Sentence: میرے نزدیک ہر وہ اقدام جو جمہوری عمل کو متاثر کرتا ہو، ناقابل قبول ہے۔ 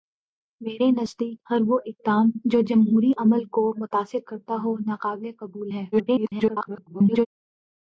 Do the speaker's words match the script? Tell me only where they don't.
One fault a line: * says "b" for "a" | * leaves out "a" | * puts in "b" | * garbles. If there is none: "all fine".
* garbles